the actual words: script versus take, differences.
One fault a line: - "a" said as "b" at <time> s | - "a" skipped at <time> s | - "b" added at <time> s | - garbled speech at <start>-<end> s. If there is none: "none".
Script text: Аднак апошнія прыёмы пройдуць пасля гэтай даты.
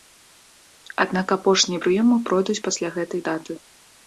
none